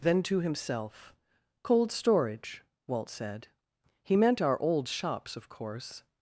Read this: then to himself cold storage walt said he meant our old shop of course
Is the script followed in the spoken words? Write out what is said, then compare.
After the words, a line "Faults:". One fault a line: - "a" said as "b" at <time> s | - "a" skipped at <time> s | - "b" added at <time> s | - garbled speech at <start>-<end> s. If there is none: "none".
then to himself cold storage walt said he meant our old shops of course
Faults:
- "shop" said as "shops" at 4.9 s